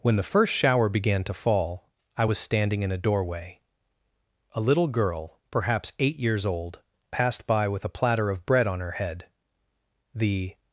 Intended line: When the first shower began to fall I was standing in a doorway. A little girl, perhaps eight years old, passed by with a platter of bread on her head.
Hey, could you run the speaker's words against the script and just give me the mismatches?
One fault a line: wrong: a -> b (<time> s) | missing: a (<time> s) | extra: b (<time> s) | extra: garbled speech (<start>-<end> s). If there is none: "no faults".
extra: The (10.1 s)